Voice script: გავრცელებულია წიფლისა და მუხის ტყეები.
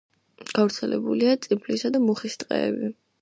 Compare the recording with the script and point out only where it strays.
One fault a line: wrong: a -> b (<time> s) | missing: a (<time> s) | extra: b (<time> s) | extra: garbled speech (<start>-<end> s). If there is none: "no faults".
no faults